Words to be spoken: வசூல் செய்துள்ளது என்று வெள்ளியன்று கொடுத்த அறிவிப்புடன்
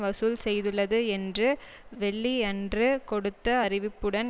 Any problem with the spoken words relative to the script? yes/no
no